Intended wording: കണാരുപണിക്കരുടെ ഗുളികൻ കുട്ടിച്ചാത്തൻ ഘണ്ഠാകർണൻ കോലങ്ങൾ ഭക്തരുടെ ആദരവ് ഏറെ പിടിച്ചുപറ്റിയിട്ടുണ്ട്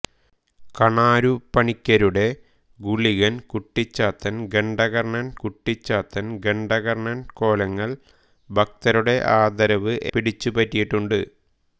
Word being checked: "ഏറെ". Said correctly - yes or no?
no